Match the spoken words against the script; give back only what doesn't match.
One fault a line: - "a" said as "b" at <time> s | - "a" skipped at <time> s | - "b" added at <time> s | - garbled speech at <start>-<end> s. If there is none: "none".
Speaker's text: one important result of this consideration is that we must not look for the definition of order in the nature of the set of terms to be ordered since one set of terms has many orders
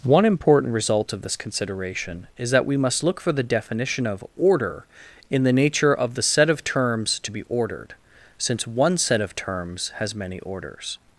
- "not" skipped at 3.0 s